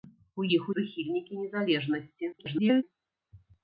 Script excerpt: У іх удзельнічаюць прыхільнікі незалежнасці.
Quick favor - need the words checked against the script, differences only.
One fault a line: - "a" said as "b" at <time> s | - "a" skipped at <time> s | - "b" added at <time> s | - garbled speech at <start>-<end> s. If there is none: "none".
- "удзельнічаюць" skipped at 0.7 s
- garbled speech at 2.3-2.8 s